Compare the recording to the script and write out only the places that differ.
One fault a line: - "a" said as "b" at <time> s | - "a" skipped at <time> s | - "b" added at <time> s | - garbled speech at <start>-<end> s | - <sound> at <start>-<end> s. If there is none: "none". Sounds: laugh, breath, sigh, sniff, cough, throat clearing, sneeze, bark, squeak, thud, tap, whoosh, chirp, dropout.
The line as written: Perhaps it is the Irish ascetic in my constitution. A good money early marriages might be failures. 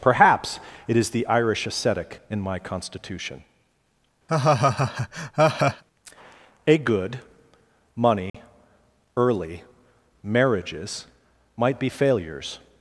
- laugh at 4.3-5.8 s
- dropout at 8.3-8.3 s